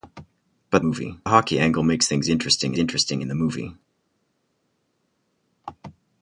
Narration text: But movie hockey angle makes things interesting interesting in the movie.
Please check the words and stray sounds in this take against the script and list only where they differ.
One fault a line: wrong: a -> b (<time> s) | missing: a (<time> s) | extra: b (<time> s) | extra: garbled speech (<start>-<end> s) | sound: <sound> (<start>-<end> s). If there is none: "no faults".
no faults